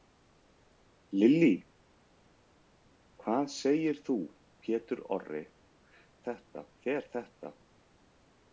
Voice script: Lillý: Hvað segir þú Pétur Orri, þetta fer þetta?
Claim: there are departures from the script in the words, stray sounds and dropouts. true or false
false